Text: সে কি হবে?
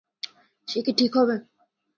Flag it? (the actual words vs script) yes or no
yes